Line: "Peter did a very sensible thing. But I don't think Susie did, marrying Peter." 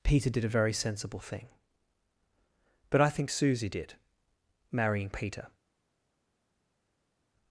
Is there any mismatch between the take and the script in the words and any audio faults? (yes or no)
yes